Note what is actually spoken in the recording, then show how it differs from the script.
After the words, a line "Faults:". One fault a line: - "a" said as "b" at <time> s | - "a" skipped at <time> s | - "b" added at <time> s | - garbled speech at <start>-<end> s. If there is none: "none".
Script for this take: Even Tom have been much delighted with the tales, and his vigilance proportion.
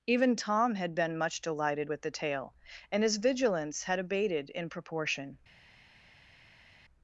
Even Tom had been much delighted with the tale, and his vigilance had abated in proportion.
Faults:
- "have" said as "had" at 0.8 s
- "tales" said as "tale" at 2.1 s
- "had abated in" added at 3.8 s